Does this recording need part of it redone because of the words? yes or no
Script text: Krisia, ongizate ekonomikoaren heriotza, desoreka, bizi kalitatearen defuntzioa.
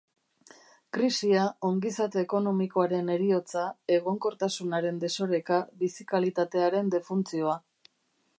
yes